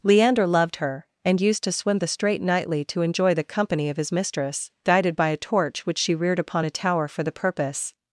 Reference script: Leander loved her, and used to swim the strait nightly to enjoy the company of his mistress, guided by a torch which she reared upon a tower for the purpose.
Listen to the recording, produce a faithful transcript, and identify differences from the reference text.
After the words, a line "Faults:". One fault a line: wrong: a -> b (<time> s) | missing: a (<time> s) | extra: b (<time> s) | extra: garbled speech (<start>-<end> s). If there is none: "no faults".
Leander loved her, and used to swim the strait nightly to enjoy the company of his mistress, guided by a torch which she reared upon a tower for the purpose.
Faults:
no faults